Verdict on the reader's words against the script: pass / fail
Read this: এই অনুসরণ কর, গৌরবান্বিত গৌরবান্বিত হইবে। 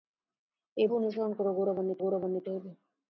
pass